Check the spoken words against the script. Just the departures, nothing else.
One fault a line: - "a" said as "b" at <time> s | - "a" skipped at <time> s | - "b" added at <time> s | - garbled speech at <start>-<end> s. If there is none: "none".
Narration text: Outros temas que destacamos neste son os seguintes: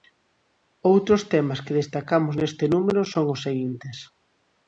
- "número" added at 2.7 s